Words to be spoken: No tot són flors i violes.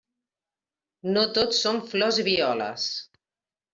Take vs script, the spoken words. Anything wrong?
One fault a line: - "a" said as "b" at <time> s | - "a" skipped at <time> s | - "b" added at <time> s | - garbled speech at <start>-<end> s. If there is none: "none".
none